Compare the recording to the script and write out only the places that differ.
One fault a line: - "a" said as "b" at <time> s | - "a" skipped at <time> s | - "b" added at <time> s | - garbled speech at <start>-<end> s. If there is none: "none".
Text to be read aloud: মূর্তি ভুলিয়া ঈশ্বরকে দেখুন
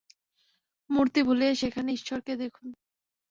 - "সেখানে" added at 1.5 s